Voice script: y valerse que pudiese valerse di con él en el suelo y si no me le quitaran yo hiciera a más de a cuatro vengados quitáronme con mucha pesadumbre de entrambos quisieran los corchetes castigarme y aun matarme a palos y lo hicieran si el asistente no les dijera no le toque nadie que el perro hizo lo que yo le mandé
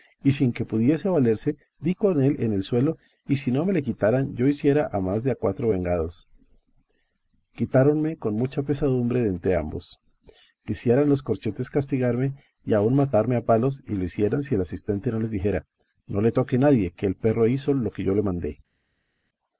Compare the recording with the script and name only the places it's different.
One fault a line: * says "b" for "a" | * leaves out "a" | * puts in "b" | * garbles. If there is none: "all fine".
* says "sin" for "valerse"